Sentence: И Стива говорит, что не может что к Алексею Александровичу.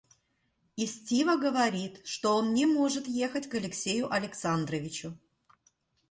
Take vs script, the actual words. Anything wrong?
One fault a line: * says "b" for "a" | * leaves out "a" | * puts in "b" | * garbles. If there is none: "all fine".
* puts in "он"
* says "ехать" for "что"